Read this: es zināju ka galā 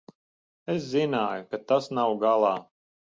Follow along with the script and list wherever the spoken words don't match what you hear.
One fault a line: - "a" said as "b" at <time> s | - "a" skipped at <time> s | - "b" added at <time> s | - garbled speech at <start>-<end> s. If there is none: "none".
- "tas nav" added at 1.7 s